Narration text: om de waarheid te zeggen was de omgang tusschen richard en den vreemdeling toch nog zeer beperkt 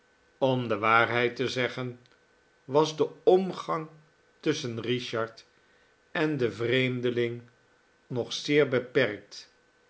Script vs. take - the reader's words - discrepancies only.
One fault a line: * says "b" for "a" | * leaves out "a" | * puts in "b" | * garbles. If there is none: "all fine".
* leaves out "toch"